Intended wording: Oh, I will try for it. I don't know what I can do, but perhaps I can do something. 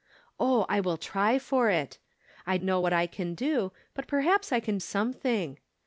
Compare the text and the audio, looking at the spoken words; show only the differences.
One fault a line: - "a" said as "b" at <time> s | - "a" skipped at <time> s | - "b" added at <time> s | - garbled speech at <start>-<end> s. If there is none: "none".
- "don't" skipped at 2.6 s
- "do" skipped at 4.8 s